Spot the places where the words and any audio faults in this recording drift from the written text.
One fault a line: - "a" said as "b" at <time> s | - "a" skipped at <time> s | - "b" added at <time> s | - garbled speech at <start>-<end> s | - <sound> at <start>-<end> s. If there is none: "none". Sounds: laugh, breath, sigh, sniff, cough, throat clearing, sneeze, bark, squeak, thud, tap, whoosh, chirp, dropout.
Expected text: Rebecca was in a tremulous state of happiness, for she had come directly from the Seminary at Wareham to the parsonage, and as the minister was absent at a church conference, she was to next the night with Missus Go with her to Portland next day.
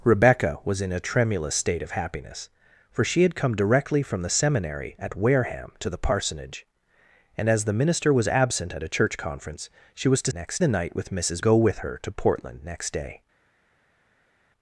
none